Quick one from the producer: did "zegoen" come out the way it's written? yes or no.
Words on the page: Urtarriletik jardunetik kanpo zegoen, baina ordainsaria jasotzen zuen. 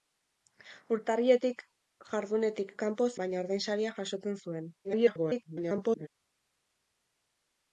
no